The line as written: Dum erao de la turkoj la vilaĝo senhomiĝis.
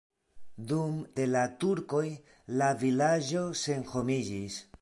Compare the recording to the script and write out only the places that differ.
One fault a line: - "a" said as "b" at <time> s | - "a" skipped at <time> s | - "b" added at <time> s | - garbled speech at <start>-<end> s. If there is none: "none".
- "erao" skipped at 0.9 s